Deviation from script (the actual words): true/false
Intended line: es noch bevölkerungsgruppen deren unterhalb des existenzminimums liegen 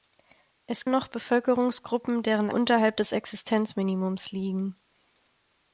false